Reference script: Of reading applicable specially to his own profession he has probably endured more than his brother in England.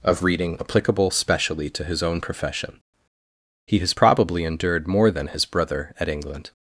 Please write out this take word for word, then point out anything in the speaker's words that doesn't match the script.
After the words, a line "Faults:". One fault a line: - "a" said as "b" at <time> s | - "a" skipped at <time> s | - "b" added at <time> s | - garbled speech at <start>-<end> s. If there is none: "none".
Of reading applicable specially to his own profession he has probably endured more than his brother at England.
Faults:
- "in" said as "at" at 6.0 s